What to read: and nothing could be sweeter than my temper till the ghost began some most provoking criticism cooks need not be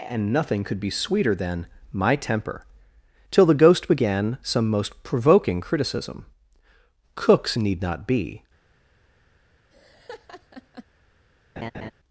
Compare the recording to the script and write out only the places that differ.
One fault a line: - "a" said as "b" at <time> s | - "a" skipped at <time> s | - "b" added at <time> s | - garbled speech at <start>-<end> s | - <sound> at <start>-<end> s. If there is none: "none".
- laugh at 9.7-10.8 s
- laugh at 11.6-11.9 s